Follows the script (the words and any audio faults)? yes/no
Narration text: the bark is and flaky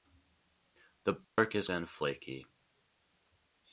no